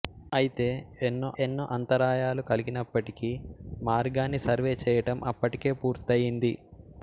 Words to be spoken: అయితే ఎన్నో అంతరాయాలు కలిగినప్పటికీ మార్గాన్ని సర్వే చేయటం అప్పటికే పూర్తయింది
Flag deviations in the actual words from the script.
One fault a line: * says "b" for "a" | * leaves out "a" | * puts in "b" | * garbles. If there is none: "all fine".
* puts in "ఎన్నో"